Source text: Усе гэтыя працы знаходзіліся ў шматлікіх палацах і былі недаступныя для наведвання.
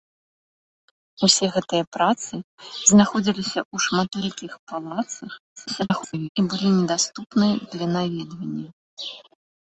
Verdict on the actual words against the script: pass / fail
fail